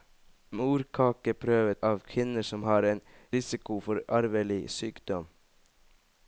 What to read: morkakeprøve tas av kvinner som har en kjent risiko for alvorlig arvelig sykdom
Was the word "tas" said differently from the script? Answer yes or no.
yes